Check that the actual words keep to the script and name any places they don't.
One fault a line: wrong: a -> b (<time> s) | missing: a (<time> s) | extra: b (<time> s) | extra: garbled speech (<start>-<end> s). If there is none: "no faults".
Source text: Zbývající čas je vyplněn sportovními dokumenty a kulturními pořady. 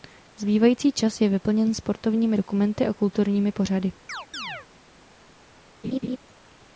no faults